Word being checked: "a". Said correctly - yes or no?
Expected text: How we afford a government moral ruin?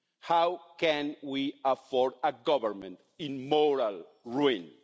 yes